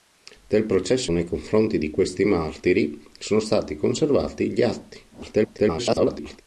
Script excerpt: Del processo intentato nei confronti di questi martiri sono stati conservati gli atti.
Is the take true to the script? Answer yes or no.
no